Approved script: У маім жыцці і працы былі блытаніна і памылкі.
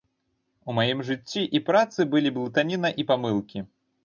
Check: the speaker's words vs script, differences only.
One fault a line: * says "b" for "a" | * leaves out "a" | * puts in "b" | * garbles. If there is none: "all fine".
all fine